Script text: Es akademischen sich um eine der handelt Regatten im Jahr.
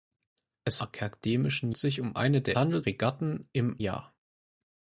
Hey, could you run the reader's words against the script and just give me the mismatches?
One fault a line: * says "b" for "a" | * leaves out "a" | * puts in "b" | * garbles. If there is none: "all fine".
all fine